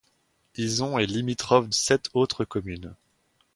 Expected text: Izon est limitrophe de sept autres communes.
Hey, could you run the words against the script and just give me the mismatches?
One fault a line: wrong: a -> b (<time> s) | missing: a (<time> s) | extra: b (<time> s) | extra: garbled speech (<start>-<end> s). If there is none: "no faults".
missing: de (1.7 s)